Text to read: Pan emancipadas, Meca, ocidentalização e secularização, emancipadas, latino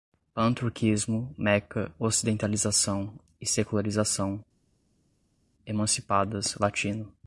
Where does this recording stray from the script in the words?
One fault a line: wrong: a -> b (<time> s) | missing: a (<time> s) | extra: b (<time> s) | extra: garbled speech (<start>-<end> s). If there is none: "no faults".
wrong: emancipadas -> turquismo (0.5 s)